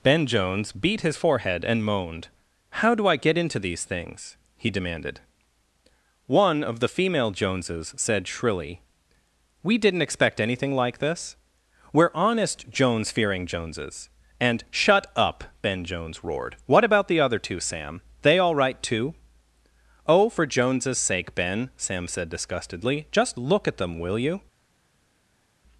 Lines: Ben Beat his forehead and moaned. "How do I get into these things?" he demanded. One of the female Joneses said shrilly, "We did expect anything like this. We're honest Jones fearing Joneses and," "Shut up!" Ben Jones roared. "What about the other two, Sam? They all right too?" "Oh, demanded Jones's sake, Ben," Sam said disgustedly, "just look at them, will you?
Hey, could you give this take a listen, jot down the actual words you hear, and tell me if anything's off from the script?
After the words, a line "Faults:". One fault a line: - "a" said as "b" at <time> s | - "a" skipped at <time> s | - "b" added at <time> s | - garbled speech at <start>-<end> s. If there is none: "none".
Ben Jones beat his forehead and moaned. "How do I get into these things?" he demanded. One of the female Joneses said shrilly, "We didn't expect anything like this. We're honest Jones fearing Joneses and," "Shut up!" Ben Jones roared. "What about the other two, Sam? They all right too?" "Oh, for Jones's sake, Ben," Sam said disgustedly, "just look at them, will you?
Faults:
- "Jones" added at 0.2 s
- "did" said as "didn't" at 9.8 s
- "demanded" said as "for" at 20.3 s